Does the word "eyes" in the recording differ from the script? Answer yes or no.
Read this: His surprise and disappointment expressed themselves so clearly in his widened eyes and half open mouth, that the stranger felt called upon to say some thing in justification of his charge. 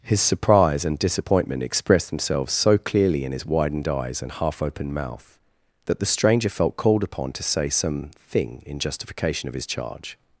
no